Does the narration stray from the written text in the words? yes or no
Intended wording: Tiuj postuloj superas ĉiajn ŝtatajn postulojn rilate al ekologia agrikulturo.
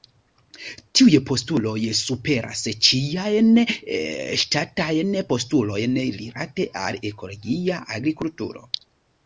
no